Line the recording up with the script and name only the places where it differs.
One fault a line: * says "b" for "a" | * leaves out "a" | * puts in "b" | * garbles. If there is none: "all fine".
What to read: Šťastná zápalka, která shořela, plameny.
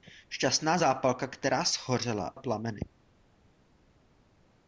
all fine